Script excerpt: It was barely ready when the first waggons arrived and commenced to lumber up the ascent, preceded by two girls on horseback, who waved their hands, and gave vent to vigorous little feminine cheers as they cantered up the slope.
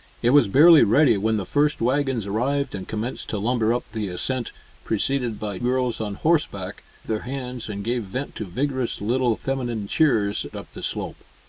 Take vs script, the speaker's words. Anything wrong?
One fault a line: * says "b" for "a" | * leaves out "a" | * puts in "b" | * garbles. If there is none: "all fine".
* leaves out "two"
* leaves out "who waved"
* leaves out "as they cantered"